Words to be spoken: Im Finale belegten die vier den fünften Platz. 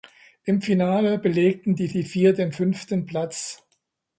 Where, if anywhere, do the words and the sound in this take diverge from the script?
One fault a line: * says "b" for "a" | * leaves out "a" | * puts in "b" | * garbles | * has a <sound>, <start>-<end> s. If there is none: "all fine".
* puts in "die"